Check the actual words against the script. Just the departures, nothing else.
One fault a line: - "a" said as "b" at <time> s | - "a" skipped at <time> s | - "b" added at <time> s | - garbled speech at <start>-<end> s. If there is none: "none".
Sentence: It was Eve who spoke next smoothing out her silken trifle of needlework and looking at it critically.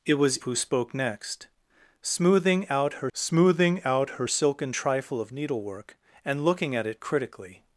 - "Eve" skipped at 0.4 s
- "smoothing out her" added at 3.2 s